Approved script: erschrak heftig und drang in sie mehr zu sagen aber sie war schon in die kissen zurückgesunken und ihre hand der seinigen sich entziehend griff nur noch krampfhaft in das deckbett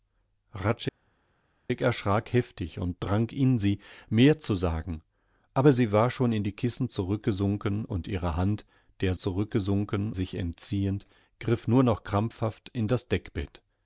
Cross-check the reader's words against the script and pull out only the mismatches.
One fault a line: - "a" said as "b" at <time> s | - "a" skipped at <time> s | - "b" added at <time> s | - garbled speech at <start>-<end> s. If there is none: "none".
- "seinigen" said as "zurückgesunken" at 9.2 s